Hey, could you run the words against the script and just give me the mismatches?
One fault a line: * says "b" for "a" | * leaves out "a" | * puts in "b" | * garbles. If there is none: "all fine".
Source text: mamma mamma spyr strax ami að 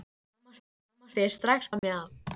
all fine